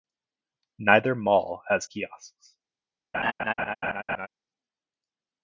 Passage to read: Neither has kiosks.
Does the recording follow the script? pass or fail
fail